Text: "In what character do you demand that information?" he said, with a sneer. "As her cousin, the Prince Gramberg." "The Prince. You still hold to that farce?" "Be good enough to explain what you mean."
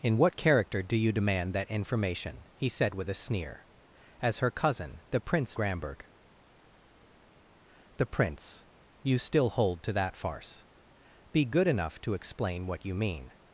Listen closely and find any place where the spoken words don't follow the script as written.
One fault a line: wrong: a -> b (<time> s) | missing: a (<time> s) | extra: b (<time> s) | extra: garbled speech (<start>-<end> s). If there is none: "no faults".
no faults